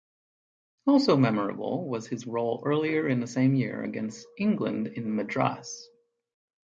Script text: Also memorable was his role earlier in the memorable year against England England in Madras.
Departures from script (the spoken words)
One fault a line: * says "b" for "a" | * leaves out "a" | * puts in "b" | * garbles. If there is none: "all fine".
* says "same" for "memorable"
* leaves out "England"